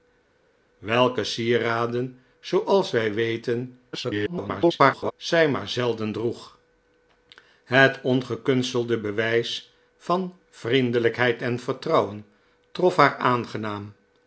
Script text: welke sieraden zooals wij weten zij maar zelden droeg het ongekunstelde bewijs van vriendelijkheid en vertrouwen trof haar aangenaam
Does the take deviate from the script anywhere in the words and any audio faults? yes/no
yes